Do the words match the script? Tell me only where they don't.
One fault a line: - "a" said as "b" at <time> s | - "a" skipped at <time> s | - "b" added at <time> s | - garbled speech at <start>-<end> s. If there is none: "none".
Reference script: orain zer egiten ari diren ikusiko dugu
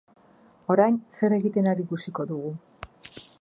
- "diren" skipped at 1.9 s